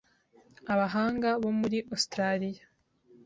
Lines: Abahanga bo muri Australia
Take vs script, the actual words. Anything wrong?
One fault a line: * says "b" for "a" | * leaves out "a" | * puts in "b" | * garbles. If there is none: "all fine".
all fine